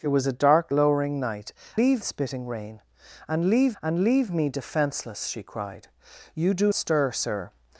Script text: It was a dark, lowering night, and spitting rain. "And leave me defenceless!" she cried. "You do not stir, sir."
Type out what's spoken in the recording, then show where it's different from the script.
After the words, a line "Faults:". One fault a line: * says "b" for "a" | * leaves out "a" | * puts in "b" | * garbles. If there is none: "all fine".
It was a dark, lowering night, leave spitting rain. "And leave and leave me defenceless!" she cried. "You do stir, sir."
Faults:
* says "leave" for "and"
* puts in "and leave"
* leaves out "not"